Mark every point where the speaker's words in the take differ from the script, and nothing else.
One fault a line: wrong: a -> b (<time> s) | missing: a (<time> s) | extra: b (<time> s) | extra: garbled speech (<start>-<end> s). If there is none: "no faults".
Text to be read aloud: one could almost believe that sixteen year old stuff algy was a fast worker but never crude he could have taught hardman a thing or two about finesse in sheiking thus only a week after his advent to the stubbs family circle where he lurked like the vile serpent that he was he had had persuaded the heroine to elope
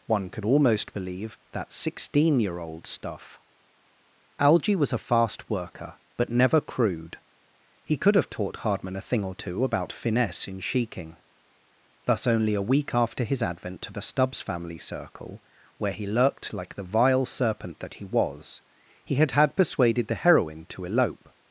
no faults